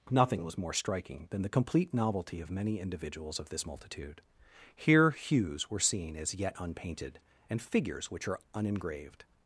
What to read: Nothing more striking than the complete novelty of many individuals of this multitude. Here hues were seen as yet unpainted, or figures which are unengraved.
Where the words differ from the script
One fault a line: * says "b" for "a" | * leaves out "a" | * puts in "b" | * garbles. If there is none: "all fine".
* puts in "was"
* says "and" for "or"